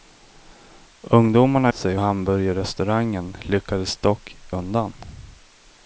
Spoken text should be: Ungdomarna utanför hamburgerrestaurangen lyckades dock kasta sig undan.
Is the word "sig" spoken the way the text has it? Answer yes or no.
no